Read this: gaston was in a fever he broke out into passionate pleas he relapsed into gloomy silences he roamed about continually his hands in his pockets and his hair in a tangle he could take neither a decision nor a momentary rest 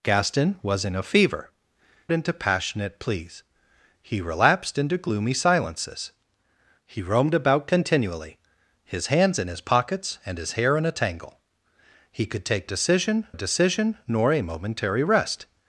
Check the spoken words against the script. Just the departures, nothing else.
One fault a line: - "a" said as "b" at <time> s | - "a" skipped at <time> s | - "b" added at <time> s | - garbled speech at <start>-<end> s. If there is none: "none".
- "he broke out" skipped at 1.5 s
- "neither" said as "decision" at 12.7 s